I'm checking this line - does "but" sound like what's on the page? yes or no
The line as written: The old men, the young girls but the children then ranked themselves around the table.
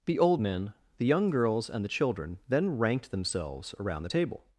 no